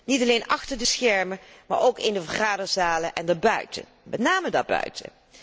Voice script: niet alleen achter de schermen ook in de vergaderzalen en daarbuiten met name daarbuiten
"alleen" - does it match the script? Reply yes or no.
yes